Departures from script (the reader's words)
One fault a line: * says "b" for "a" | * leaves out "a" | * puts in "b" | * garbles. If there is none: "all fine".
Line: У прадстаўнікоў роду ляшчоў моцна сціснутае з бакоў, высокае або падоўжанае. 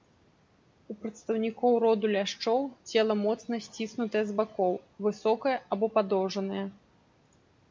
* puts in "цела"